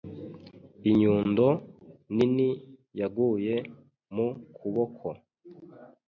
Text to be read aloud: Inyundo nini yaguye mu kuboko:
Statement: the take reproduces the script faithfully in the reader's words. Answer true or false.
true